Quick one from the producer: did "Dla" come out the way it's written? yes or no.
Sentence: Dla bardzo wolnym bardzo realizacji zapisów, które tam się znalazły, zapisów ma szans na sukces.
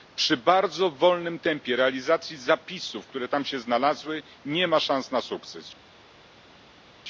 no